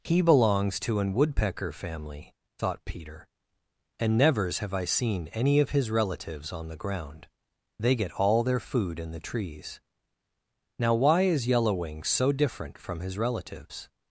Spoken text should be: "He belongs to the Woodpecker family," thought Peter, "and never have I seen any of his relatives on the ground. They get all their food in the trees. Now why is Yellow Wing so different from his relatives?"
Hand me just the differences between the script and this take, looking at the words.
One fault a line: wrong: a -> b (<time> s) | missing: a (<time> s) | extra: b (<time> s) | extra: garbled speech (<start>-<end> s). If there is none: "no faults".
wrong: the -> an (1.0 s)
wrong: never -> nevers (4.2 s)